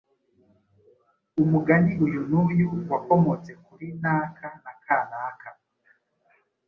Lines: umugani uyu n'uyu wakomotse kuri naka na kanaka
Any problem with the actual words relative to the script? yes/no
no